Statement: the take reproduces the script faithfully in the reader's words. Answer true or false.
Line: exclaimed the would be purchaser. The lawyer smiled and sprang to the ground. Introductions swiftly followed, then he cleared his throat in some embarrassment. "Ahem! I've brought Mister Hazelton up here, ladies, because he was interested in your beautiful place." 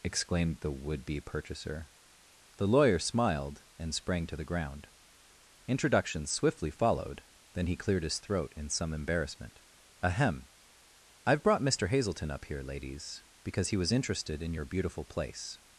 true